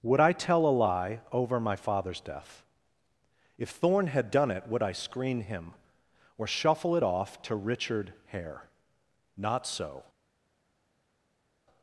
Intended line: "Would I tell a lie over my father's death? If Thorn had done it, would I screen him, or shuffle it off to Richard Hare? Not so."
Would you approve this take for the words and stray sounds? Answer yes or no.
yes